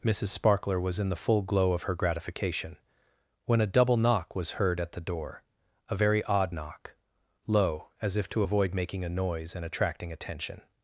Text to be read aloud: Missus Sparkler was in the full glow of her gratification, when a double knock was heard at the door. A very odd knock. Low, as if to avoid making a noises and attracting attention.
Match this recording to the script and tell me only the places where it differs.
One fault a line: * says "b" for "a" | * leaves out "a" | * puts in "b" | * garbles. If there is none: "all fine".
* says "noise" for "noises"